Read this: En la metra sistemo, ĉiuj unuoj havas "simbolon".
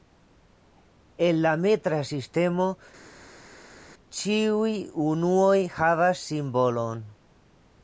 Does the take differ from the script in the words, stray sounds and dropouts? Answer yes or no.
no